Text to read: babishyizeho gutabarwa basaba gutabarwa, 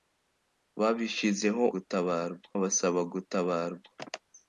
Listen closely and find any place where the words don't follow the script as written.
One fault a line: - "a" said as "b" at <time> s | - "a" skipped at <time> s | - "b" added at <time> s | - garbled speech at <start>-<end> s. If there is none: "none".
none